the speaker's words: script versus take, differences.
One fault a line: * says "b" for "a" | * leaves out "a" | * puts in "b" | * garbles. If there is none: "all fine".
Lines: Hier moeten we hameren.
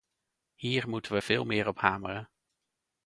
* puts in "veel meer op"